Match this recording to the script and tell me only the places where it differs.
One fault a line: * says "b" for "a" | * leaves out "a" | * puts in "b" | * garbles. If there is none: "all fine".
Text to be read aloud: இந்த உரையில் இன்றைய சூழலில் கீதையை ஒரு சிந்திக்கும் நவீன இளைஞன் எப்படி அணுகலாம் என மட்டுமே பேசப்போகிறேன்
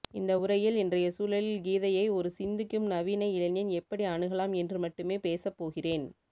* says "என்று" for "என"